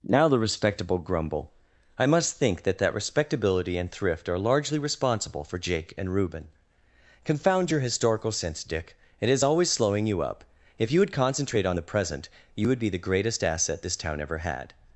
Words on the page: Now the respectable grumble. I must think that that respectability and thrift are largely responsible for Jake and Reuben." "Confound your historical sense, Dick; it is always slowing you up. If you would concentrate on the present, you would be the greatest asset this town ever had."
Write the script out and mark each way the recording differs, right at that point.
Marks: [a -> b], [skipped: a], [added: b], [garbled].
Now the respectable grumble. I must think that that respectability and thrift are largely responsible for Jake and Reuben." "Confound your historical sense, Dick; it is always slowing you up. If you would concentrate on the present, you would be the greatest asset this town ever had."